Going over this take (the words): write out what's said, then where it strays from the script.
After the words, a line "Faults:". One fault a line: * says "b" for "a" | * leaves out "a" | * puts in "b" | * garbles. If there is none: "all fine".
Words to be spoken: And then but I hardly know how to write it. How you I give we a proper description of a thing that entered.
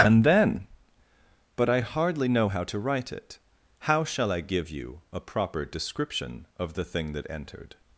And then but I hardly know how to write it. How shall I give you a proper description of the thing that entered.
Faults:
* says "shall" for "you"
* says "you" for "we"
* says "the" for "a"